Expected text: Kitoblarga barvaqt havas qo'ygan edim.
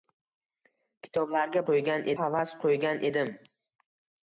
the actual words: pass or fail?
fail